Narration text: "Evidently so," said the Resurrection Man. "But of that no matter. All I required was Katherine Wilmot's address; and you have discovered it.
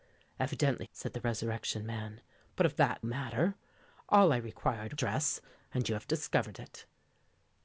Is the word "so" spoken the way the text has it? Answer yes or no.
no